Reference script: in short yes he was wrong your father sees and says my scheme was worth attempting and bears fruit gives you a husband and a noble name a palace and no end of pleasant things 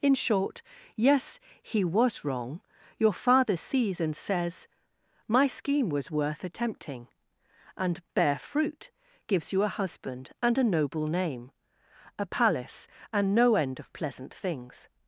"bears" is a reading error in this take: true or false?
true